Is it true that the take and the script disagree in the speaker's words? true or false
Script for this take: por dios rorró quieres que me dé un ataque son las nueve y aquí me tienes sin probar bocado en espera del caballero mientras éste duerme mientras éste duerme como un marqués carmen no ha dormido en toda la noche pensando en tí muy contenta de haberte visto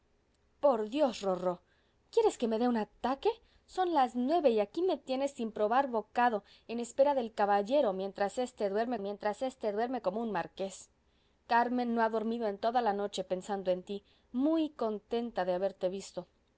false